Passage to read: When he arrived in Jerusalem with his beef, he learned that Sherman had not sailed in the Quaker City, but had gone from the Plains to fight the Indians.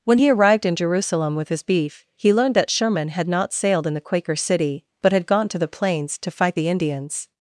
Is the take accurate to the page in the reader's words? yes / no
no